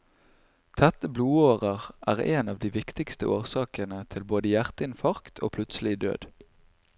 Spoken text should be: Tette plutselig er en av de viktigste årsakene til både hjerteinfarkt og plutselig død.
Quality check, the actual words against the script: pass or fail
fail